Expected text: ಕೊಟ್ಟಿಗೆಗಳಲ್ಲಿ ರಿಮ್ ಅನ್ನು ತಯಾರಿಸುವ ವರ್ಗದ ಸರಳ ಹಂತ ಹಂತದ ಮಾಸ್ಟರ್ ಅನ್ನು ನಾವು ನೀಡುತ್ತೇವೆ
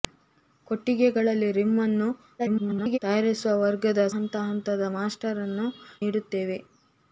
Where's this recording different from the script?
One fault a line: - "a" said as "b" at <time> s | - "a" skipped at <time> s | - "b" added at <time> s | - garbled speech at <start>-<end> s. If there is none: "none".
- garbled speech at 2.4-3.0 s
- "ಸರಳ" skipped at 4.1 s
- "ನಾವು" skipped at 5.7 s